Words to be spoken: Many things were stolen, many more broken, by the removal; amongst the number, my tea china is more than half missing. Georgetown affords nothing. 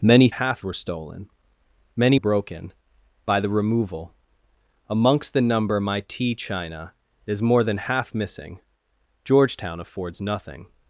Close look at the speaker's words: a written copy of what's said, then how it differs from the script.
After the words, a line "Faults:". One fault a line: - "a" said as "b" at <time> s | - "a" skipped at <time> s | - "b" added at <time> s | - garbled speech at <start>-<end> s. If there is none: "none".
Many half were stolen, many broken, by the removal; amongst the number, my tea china is more than half missing. Georgetown affords nothing.
Faults:
- "things" said as "half" at 0.3 s
- "more" skipped at 2.2 s